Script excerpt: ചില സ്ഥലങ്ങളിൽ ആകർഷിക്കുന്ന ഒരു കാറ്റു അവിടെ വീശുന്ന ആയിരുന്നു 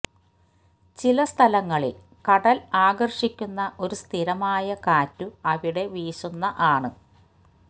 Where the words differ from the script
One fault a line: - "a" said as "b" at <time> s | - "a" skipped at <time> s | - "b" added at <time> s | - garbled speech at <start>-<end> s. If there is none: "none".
- "കടൽ" added at 2.2 s
- "സ്ഥിരമായ" added at 4.0 s
- "ആയിരുന്നു" said as "ആണ്" at 6.7 s